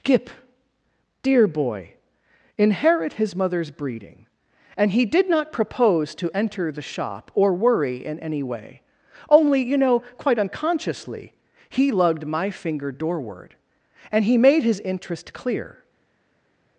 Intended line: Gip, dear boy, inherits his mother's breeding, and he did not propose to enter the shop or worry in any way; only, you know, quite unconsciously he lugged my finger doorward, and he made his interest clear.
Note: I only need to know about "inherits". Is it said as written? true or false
false